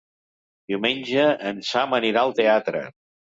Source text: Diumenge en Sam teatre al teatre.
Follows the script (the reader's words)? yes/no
no